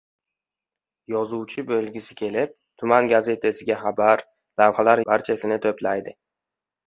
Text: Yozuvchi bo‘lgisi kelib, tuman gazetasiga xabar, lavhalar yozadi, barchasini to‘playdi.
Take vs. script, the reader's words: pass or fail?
fail